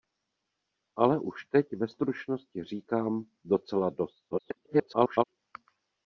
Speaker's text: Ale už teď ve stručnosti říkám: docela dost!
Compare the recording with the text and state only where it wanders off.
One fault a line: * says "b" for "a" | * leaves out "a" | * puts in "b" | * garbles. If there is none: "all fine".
* garbles